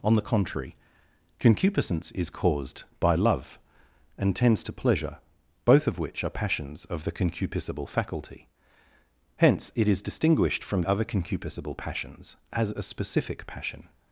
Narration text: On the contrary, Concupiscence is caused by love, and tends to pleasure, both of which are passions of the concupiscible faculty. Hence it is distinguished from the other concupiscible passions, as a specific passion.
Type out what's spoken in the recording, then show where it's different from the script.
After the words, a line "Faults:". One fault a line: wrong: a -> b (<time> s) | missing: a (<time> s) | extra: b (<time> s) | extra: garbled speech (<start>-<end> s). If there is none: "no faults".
On the contrary, Concupiscence is caused by love, and tends to pleasure, both of which are passions of the concupiscible faculty. Hence it is distinguished from other concupiscible passions, as a specific passion.
Faults:
missing: the (10.8 s)